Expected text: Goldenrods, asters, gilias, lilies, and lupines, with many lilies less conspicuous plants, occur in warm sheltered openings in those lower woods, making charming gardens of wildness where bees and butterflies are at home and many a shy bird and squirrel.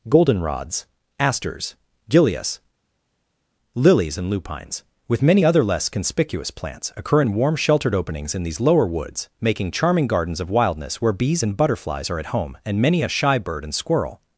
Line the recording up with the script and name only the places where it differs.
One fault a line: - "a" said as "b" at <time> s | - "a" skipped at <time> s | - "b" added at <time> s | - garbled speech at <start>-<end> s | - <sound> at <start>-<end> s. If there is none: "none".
- "lilies" said as "other" at 5.4 s
- "those" said as "these" at 8.4 s